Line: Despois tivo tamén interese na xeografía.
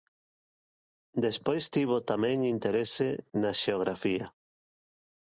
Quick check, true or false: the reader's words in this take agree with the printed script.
true